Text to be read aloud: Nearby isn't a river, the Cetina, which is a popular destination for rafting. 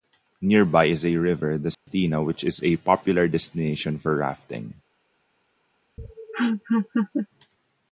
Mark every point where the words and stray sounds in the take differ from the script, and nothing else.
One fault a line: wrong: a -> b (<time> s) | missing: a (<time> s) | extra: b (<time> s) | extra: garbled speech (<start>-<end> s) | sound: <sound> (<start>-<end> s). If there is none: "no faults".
wrong: isn't -> is (0.8 s)
sound: dropout (1.7-1.9 s)
sound: laugh (6.0-7.3 s)